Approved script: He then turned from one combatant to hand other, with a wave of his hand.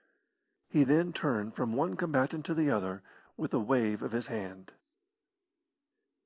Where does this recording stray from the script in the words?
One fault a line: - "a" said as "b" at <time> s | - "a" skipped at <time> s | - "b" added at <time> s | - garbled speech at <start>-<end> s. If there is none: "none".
- "hand" said as "the" at 2.5 s